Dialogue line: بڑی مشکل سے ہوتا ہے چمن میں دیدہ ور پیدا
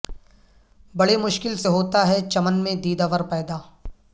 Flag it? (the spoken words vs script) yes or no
no